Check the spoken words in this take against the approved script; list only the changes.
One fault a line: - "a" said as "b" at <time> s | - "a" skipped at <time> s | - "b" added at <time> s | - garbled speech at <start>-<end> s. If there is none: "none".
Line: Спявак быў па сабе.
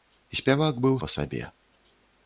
none